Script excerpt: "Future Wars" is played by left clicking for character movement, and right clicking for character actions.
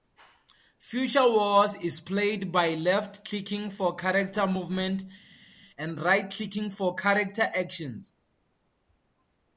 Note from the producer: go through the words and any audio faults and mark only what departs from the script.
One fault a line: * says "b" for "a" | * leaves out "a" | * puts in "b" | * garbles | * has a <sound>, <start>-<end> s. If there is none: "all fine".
all fine